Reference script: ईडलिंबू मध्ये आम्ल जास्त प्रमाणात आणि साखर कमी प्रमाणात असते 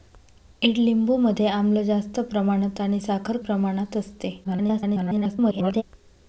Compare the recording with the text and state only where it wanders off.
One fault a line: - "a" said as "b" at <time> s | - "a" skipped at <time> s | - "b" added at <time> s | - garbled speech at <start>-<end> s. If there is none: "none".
- "कमी" skipped at 3.4 s
- garbled speech at 4.4-5.8 s